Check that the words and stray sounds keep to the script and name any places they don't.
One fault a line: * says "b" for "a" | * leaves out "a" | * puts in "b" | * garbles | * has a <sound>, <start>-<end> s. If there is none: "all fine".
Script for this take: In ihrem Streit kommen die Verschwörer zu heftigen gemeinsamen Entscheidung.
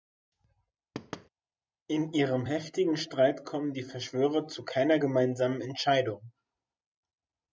* has a thud, 0.9-1.3 s
* puts in "heftigen"
* says "keiner" for "heftigen"